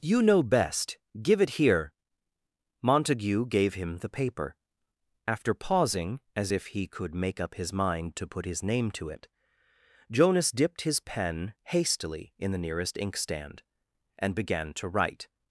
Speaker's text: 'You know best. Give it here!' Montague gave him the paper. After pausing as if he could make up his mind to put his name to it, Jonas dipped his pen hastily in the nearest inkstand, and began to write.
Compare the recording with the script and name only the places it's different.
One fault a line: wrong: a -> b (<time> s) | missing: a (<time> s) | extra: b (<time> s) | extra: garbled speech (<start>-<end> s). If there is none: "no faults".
no faults